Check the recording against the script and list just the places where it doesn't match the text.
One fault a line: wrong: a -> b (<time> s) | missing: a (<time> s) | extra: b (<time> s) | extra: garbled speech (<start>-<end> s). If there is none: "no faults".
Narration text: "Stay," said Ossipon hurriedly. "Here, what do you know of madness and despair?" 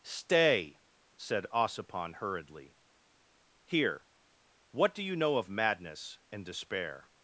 no faults